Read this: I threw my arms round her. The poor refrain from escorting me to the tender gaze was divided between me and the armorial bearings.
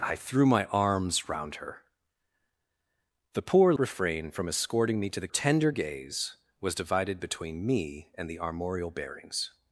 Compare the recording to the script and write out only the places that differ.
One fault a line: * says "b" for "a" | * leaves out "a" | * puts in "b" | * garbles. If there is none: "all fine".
all fine